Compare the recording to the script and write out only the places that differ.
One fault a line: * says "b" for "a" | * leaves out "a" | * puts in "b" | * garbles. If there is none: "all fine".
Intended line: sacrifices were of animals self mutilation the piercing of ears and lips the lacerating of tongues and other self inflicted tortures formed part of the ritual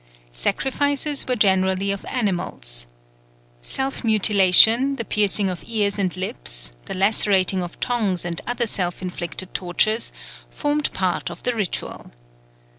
* puts in "generally"